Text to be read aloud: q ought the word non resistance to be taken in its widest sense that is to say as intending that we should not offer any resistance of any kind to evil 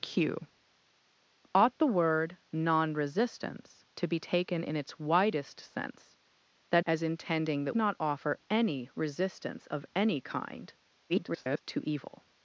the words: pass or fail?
fail